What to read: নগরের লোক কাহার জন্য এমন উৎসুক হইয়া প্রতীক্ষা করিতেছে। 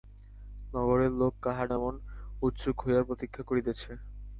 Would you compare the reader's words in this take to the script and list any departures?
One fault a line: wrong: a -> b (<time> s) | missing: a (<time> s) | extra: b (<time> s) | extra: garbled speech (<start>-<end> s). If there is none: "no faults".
missing: জন্য (1.7 s)